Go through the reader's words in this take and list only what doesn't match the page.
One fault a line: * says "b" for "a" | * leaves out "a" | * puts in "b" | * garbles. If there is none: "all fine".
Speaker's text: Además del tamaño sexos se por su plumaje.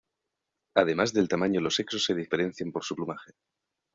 * puts in "los"
* puts in "diferencian"